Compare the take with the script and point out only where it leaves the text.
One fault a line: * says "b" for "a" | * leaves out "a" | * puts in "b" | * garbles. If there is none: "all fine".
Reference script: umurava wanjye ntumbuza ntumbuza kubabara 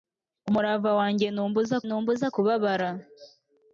all fine